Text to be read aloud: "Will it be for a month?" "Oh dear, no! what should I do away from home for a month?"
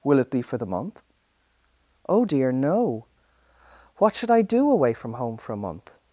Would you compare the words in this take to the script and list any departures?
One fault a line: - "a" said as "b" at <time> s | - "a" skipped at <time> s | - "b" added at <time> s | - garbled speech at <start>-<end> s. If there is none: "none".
- "a" said as "the" at 0.6 s